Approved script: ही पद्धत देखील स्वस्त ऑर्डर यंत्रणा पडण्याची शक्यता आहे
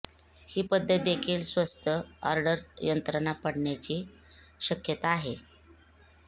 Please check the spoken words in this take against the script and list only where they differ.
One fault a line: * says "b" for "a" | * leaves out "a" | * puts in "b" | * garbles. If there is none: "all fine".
all fine